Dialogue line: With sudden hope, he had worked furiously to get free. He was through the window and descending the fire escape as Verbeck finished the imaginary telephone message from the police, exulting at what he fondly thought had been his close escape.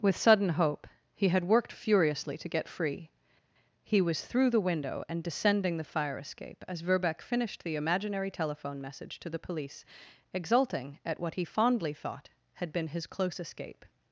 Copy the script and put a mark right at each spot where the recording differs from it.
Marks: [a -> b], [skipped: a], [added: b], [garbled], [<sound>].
With sudden hope, he had worked furiously to get free. He was through the window and descending the fire escape as Verbeck finished the imaginary telephone message [from -> to] the police, exulting at what he fondly thought had been his close escape.